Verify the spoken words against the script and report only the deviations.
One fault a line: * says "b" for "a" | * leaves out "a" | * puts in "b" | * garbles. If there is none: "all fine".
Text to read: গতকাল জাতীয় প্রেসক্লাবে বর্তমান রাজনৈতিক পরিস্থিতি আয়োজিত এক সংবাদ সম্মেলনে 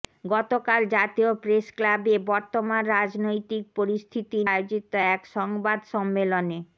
all fine